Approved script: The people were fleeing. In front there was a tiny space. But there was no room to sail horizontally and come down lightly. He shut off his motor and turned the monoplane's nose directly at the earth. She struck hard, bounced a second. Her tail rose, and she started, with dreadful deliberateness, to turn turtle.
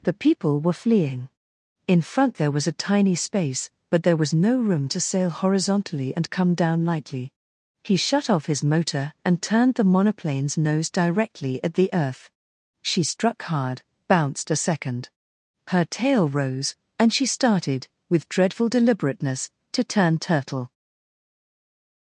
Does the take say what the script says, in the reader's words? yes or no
yes